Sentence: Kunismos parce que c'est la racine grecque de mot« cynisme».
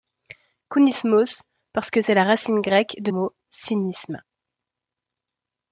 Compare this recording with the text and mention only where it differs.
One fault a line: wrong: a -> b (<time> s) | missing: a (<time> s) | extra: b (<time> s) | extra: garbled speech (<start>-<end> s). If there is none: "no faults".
no faults